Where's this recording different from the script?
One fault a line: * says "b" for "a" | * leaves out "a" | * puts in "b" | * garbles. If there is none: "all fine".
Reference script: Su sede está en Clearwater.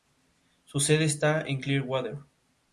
all fine